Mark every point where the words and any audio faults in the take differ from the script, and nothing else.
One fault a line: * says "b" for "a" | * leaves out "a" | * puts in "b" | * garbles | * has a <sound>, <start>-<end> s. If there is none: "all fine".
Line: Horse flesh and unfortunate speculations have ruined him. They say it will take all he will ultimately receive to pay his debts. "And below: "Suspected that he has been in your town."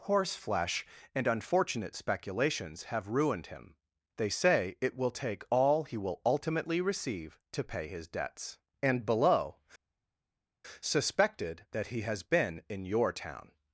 all fine